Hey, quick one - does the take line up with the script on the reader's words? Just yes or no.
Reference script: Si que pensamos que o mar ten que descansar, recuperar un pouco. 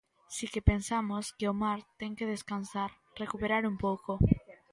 yes